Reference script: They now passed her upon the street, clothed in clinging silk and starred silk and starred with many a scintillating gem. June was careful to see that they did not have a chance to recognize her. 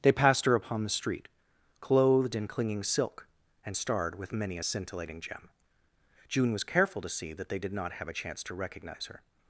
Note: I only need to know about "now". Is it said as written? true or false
false